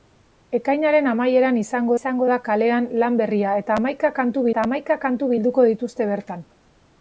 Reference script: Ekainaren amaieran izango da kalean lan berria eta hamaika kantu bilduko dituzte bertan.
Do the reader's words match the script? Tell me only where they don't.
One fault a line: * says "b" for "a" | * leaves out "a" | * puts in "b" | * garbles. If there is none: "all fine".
* puts in "izango"
* puts in "eta hamaika kantu"